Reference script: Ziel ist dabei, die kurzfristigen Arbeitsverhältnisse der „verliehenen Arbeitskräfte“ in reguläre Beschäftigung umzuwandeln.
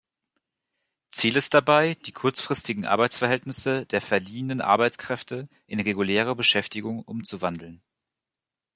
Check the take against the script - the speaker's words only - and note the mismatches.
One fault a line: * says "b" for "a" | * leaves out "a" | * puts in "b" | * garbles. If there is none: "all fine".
all fine